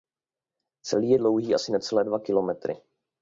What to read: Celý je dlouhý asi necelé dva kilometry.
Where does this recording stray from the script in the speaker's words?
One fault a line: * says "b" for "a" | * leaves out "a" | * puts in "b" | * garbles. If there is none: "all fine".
all fine